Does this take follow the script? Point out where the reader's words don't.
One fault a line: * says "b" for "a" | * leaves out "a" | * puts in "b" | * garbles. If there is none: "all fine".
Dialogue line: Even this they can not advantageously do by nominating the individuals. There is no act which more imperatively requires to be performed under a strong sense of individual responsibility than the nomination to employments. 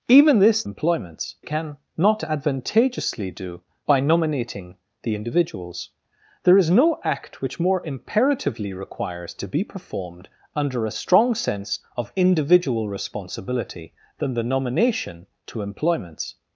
* says "employments" for "they"